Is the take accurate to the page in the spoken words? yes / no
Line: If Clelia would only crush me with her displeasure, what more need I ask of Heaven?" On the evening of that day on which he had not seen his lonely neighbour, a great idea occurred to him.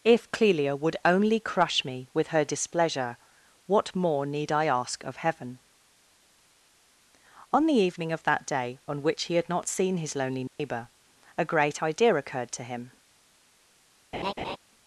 yes